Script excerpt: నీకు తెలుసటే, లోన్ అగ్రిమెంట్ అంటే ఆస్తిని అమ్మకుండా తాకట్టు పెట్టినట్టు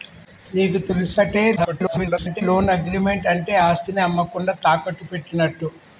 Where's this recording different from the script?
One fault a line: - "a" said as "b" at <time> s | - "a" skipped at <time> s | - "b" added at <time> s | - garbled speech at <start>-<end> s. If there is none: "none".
- garbled speech at 1.6-2.4 s